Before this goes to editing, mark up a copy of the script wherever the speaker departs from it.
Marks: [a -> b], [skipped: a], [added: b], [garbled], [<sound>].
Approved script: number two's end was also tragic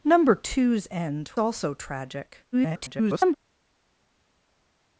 number two's end [skipped: was] also tragic [garbled]